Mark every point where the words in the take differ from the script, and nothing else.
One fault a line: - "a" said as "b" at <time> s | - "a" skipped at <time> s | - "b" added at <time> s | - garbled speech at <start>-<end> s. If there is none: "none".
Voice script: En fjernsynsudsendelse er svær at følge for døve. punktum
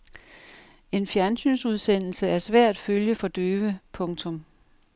none